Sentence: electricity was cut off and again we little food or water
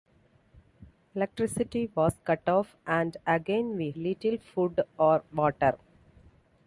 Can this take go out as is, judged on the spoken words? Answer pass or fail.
pass